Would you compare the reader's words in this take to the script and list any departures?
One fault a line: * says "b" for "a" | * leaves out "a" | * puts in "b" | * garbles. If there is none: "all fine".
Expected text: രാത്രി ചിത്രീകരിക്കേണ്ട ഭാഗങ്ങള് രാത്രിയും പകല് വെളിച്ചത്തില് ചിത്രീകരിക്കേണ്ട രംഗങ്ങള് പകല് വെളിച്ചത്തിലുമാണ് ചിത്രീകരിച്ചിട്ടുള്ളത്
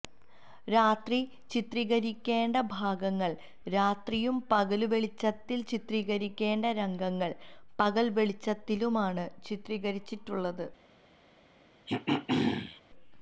all fine